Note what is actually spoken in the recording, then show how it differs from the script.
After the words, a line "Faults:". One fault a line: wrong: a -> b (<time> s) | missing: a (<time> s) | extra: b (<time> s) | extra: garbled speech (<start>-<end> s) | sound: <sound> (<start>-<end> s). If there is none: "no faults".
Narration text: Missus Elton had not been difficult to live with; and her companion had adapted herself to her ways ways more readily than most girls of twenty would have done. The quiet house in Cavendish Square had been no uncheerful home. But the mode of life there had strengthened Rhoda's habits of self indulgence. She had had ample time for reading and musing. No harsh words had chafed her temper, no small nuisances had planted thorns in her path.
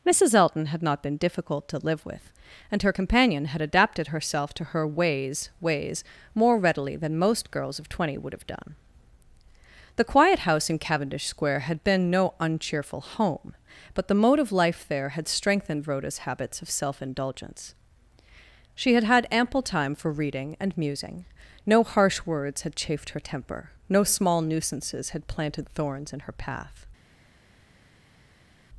Missus Elton had not been difficult to live with; and her companion had adapted herself to her ways ways more readily than most girls of twenty would have done. The quiet house in Cavendish Square had been no uncheerful home. But the mode of life there had strengthened Rhoda's habits of self indulgence. She had had ample time for reading and musing. No harsh words had chafed her temper, no small nuisances had planted thorns in her path.
Faults:
no faults